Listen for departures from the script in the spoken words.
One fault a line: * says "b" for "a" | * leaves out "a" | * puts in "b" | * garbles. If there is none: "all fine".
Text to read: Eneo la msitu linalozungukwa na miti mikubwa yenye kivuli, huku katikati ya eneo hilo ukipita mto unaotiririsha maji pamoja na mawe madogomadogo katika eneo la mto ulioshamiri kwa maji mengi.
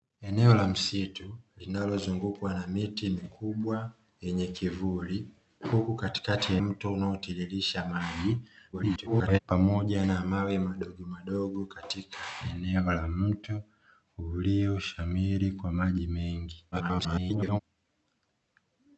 * leaves out "eneo hilo ukipita"
* garbles
* garbles